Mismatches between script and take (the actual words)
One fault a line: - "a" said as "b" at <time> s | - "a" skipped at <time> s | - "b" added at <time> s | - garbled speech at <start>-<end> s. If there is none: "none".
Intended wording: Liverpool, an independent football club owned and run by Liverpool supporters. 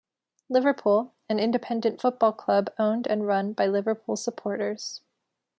none